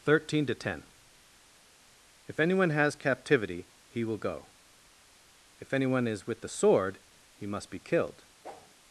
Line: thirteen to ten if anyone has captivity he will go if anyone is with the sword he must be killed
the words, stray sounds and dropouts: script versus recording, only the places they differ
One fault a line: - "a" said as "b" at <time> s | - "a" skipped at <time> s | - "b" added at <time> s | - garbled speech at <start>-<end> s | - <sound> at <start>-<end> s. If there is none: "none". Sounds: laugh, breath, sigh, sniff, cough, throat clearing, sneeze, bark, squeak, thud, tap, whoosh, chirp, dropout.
- whoosh at 8.4-8.7 s